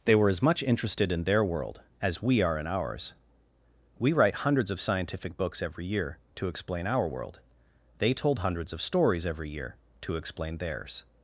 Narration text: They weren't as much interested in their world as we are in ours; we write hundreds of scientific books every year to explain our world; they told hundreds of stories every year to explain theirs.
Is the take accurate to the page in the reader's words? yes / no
no